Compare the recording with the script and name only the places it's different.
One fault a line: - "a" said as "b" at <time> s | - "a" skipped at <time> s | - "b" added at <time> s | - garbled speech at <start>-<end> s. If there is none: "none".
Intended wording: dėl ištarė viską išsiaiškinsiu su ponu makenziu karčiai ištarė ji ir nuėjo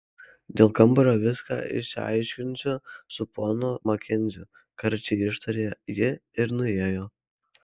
- "ištarė" said as "kambario" at 0.8 s